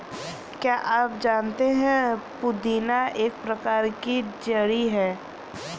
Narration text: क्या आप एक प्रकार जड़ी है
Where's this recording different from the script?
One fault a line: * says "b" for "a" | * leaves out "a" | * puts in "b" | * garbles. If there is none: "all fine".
* puts in "जानते है पुदीना"
* puts in "की"